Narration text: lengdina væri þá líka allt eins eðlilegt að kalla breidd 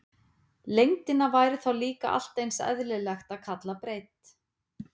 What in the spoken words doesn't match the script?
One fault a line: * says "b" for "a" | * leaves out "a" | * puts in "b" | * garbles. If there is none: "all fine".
all fine